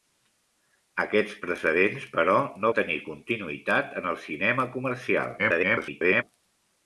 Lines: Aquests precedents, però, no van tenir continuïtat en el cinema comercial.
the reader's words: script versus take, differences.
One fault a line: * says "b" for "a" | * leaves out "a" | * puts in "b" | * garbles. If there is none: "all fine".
* leaves out "van"
* garbles